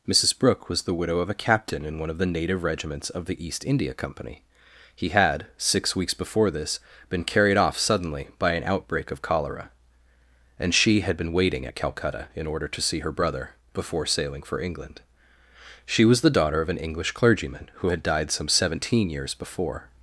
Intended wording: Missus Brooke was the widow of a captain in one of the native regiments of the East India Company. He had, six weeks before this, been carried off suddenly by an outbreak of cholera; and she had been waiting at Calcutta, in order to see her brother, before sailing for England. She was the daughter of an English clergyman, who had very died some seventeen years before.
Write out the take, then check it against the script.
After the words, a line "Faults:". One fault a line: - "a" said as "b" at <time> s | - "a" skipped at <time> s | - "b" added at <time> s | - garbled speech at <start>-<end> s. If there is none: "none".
Missus Brooke was the widow of a captain in one of the native regiments of the East India Company. He had, six weeks before this, been carried off suddenly by an outbreak of cholera; and she had been waiting at Calcutta, in order to see her brother, before sailing for England. She was the daughter of an English clergyman, who had died some seventeen years before.
Faults:
- "very" skipped at 18.0 s